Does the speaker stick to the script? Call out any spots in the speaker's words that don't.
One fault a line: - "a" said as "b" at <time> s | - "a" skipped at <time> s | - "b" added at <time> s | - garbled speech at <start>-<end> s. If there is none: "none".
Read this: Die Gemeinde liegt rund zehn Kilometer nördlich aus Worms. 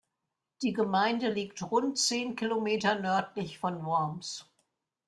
- "aus" said as "von" at 3.6 s